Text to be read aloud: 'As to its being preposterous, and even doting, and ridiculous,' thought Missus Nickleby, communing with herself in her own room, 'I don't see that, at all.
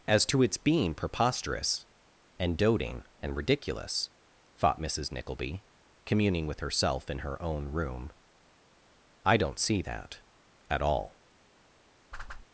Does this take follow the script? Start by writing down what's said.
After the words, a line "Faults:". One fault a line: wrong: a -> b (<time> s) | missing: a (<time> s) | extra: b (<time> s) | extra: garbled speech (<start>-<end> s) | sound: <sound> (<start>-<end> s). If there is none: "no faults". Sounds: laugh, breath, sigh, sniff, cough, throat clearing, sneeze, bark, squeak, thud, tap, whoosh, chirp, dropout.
'As to its being preposterous, and doting, and ridiculous,' thought Missus Nickleby, communing with herself in her own room, 'I don't see that, at all.
Faults:
missing: even (2.6 s)
sound: whoosh (12.1-12.5 s)